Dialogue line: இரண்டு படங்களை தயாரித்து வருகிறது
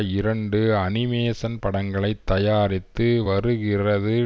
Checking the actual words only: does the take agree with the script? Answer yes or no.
no